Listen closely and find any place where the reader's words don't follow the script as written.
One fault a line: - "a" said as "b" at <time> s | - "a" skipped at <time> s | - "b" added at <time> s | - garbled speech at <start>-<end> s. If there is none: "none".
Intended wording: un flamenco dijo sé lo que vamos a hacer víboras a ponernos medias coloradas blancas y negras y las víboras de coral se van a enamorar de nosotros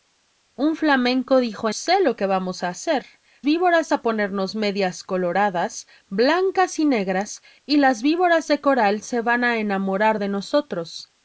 none